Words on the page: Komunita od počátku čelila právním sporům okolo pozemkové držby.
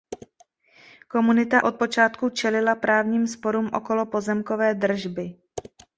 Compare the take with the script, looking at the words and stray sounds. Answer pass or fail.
pass